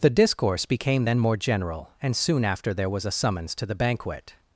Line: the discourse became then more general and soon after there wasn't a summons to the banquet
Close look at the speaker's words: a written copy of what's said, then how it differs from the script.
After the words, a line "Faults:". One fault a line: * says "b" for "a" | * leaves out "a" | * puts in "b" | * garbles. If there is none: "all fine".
the discourse became then more general and soon after there was a summons to the banquet
Faults:
* says "was" for "wasn't"